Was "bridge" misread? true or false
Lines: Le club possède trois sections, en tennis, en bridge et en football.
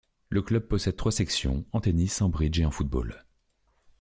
false